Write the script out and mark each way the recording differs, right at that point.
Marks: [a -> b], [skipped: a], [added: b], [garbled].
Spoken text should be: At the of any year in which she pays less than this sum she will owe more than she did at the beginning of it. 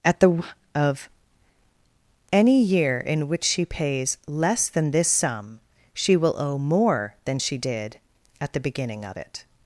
At the of any year in which she pays less than this sum she will owe more than she did at the beginning of it.